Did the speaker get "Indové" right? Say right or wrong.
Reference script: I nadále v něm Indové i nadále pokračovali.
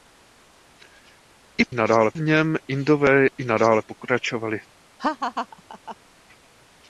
right